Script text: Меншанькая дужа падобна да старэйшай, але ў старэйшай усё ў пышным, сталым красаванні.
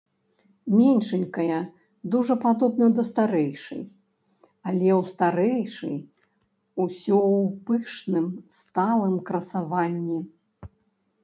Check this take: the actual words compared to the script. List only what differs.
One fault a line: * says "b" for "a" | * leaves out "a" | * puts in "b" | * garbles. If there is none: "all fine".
all fine